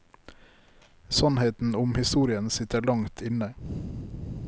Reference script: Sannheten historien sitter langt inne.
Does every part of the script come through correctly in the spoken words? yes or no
no